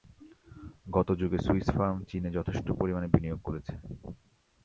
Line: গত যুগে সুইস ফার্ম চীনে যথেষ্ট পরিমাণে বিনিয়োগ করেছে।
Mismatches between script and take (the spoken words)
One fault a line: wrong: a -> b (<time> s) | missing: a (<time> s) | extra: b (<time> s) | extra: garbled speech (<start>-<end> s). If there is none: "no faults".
no faults